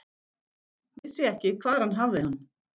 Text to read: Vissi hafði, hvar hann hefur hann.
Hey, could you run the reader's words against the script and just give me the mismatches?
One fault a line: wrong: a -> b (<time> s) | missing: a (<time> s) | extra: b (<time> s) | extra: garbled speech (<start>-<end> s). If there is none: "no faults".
wrong: hafði -> ekki (1.3 s)
wrong: hefur -> hafði (2.0 s)